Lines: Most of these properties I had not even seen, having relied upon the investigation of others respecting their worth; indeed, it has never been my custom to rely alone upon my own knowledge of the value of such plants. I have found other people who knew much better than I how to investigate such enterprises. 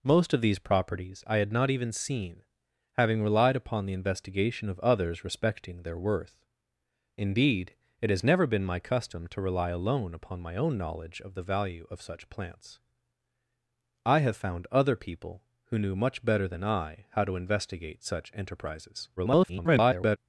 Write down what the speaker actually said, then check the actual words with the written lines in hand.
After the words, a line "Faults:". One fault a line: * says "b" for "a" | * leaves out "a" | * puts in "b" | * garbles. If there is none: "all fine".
Most of these properties I had not even seen, having relied upon the investigation of others respecting their worth; indeed, it has never been my custom to rely alone upon my own knowledge of the value of such plants. I have found other people who knew much better than I how to investigate such enterprises. [garbled]
Faults:
* garbles